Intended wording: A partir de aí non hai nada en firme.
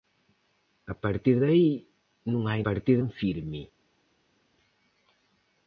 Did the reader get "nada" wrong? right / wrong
wrong